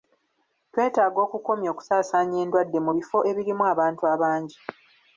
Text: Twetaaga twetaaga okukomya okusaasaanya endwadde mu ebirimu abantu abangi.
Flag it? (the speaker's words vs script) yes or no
yes